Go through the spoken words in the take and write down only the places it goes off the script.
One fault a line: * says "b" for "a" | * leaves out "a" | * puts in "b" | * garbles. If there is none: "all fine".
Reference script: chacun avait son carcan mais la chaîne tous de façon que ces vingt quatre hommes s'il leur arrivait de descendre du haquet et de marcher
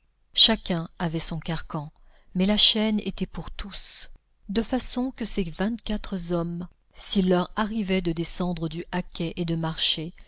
* puts in "était pour"